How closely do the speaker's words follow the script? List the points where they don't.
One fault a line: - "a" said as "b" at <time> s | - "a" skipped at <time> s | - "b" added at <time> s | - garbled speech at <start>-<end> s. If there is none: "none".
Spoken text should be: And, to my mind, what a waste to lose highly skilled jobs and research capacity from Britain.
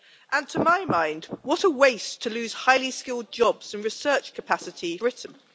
- "from" skipped at 5.0 s